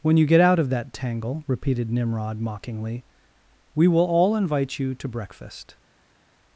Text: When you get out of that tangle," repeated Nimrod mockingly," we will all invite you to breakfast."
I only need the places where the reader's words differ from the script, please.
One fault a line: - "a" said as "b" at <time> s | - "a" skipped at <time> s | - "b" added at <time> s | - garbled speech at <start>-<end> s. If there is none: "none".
none